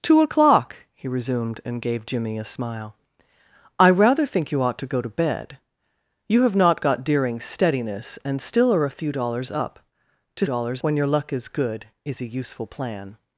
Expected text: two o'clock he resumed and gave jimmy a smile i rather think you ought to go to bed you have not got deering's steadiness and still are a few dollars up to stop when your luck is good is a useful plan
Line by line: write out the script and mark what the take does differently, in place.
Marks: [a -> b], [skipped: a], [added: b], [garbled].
two o'clock he resumed and gave jimmy a smile i rather think you ought to go to bed you have not got deering's steadiness and still are a few dollars up to [stop -> dollars] when your luck is good is a useful plan